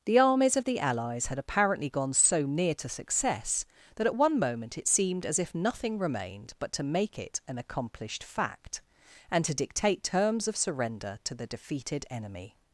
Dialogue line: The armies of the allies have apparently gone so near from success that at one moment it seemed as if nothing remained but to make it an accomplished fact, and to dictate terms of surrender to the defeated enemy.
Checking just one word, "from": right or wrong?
wrong